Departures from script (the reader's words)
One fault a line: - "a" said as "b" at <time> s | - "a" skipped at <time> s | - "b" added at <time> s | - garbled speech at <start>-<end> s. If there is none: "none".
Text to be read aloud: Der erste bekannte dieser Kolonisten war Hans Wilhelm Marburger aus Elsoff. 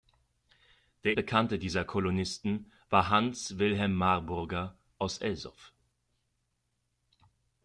- "erste" skipped at 1.1 s